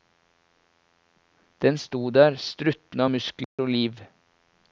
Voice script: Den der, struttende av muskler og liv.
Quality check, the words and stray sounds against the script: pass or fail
fail